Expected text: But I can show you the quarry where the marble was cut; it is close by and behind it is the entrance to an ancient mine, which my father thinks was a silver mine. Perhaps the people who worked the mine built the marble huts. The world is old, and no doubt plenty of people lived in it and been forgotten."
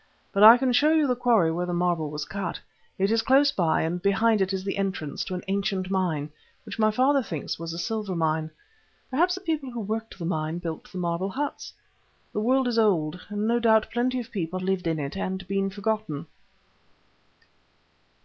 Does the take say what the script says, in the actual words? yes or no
yes